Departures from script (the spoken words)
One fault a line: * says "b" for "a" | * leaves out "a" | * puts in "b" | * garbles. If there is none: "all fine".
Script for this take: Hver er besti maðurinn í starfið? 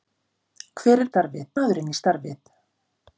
* says "starfið" for "besti"